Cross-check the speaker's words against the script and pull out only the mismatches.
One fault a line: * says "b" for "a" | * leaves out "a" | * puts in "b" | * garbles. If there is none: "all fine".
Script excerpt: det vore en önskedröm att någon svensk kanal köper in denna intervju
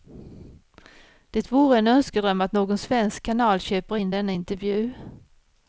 all fine